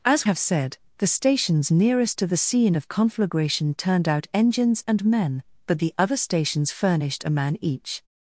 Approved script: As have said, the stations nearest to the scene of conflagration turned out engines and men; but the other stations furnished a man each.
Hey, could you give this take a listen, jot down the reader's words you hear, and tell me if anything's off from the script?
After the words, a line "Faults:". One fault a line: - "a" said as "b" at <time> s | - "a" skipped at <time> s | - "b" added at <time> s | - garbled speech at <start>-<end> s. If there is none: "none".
As have said, the stations nearest to the scene of conflagration turned out engines and men; but the other stations furnished a man each.
Faults:
none